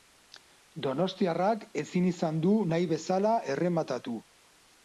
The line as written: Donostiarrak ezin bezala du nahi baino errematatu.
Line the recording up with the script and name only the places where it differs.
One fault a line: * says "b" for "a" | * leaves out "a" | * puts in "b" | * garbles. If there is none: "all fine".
* says "izan" for "bezala"
* says "bezala" for "baino"